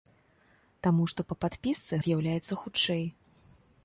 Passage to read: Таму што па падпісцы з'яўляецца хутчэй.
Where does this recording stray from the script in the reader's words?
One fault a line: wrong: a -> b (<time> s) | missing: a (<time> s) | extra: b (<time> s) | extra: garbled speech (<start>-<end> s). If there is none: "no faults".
no faults